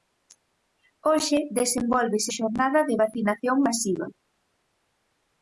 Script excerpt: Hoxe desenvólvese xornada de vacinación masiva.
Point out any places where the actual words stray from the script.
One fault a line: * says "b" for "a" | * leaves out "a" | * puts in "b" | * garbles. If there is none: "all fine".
all fine